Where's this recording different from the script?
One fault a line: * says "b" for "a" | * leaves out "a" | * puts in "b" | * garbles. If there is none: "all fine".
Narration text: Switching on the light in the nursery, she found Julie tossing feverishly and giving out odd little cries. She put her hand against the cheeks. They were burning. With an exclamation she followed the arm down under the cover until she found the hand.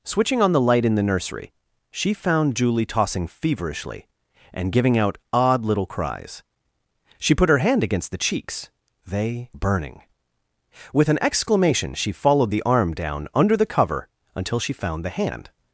* leaves out "were"